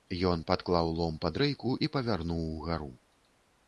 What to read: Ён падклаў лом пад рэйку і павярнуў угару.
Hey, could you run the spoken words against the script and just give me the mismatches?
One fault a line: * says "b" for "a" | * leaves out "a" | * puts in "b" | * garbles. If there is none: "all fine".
all fine